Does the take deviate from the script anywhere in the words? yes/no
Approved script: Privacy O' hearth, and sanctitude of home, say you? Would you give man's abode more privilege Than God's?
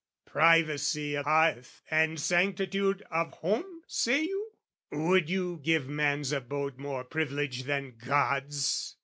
no